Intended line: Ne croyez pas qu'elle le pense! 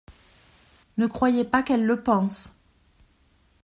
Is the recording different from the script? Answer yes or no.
no